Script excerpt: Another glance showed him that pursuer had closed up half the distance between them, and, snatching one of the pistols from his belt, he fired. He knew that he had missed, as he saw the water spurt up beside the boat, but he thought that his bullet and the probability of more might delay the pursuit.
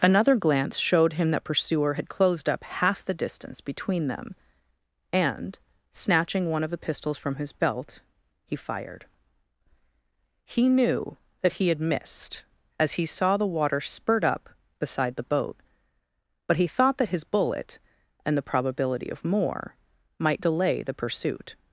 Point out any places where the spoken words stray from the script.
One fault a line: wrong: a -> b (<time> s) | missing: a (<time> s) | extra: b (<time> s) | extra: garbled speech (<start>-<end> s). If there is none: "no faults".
no faults